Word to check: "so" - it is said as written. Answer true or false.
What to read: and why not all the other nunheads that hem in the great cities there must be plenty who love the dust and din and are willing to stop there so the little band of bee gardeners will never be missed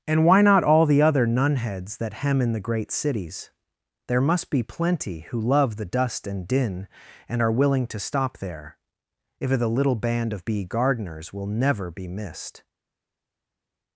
false